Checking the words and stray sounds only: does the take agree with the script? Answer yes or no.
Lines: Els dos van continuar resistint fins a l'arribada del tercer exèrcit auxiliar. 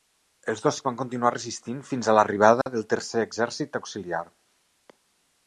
no